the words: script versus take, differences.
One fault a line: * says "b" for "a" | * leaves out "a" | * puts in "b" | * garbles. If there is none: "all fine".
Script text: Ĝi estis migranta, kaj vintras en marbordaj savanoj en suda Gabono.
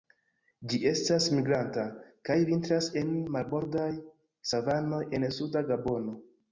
* says "estas" for "estis"